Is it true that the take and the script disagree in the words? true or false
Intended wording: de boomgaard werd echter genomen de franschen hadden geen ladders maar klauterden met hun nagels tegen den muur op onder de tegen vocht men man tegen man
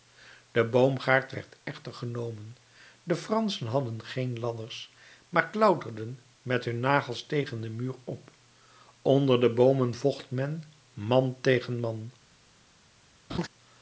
true